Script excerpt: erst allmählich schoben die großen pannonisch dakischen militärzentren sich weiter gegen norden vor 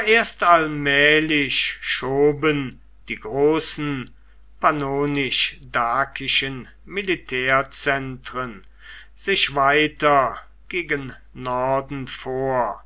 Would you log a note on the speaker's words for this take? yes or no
no